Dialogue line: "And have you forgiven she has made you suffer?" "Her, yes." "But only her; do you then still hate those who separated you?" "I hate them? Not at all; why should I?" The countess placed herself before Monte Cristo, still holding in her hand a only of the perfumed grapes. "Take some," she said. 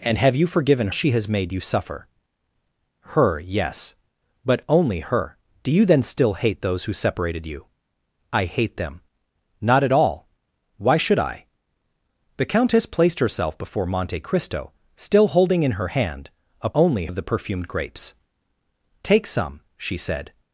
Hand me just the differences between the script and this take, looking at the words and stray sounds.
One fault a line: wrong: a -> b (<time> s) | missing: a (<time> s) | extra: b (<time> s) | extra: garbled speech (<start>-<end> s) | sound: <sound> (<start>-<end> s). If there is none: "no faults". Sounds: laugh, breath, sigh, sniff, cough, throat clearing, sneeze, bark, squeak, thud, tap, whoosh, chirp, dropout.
no faults